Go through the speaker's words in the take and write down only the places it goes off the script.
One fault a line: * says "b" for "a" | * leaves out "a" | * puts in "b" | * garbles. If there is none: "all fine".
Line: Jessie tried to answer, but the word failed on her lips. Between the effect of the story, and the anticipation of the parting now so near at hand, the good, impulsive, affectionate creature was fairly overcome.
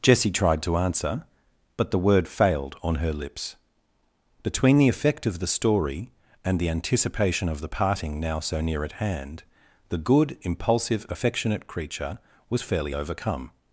all fine